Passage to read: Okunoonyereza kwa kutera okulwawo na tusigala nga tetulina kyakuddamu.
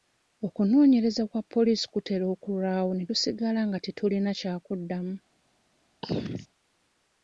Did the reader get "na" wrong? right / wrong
wrong